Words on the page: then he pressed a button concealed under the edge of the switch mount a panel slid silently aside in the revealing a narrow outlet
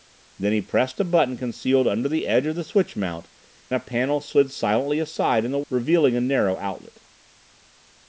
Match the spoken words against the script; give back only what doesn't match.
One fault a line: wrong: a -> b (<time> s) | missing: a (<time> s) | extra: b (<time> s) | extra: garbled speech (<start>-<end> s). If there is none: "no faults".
no faults